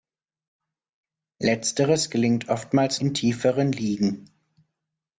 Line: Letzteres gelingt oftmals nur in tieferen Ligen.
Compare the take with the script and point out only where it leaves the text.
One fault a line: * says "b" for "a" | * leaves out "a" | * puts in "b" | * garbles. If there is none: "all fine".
* leaves out "nur"